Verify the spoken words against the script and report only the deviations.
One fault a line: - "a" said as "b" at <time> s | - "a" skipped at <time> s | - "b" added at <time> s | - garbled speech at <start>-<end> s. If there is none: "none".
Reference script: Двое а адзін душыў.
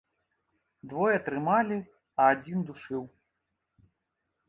- "трымалі" added at 1.3 s